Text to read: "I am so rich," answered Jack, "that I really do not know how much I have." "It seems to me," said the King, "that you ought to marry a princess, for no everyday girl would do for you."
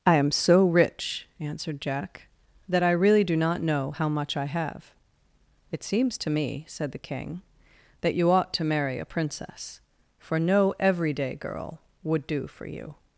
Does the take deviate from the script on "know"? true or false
false